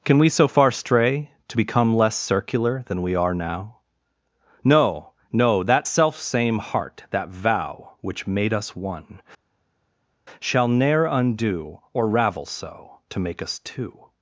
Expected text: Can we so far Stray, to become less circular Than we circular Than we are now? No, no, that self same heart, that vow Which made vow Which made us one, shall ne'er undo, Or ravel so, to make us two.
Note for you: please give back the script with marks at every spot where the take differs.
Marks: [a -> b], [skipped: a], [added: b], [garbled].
Can we so far Stray, to become less circular Than we [skipped: circular Than we] are now? No, no, that self same heart, that vow Which made [skipped: vow Which made] us one, shall ne'er undo, Or ravel so, to make us two.